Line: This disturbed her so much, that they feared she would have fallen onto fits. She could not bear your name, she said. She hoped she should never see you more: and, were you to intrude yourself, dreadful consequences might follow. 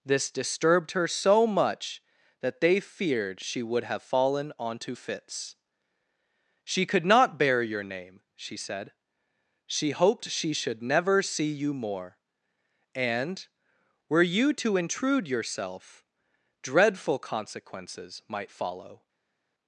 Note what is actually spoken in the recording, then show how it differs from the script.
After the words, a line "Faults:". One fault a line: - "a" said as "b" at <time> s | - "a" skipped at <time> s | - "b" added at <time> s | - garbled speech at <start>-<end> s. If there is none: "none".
This disturbed her so much, that they feared she would have fallen onto fits. She could not bear your name, she said. She hoped she should never see you more: and, were you to intrude yourself, dreadful consequences might follow.
Faults:
none